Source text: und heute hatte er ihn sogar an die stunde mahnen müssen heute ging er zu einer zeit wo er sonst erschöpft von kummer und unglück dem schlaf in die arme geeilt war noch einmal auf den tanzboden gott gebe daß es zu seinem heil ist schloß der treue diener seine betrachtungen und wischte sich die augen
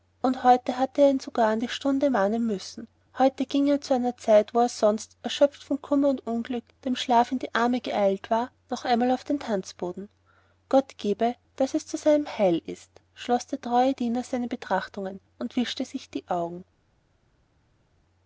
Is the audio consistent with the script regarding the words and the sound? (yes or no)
yes